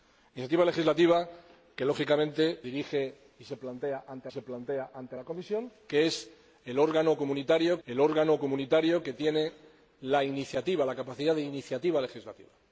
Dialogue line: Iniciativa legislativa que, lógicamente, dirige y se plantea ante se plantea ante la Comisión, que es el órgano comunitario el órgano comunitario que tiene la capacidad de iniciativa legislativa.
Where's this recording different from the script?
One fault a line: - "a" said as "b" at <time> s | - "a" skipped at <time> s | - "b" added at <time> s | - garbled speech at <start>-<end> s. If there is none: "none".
none